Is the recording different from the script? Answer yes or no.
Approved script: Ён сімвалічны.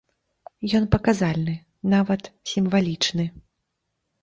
yes